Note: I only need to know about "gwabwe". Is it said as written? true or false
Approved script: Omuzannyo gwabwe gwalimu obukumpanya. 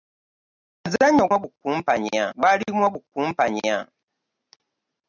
false